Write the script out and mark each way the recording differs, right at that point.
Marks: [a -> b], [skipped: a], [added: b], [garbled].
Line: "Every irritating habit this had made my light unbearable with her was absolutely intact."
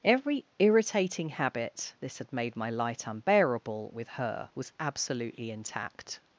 "Every irritating habit this had made my light unbearable with her was absolutely intact."